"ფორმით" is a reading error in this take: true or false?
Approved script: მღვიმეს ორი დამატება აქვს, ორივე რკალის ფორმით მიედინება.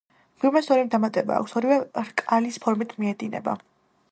false